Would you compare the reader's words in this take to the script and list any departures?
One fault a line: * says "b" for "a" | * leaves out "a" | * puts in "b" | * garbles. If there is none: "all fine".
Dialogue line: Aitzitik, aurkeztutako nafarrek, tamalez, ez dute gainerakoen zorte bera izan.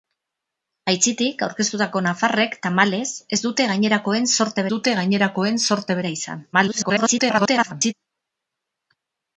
* puts in "dute gainerakoen zorte"
* garbles